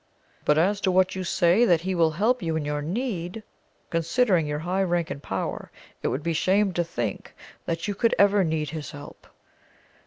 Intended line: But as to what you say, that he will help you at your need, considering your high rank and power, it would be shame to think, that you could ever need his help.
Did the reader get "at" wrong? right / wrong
wrong